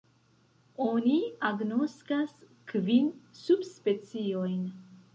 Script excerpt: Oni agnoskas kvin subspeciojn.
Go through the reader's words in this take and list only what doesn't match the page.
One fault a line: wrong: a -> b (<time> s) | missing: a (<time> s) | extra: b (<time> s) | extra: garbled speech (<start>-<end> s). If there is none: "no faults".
no faults